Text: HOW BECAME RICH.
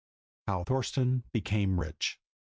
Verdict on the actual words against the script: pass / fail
fail